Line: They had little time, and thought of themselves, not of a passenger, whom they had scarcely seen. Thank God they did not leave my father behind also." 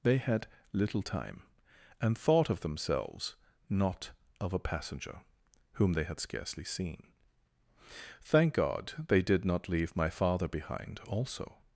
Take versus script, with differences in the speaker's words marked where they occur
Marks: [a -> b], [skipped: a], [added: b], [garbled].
They had little time, and thought of themselves, not of a passenger, whom they had scarcely seen. Thank God they did not leave my father behind also."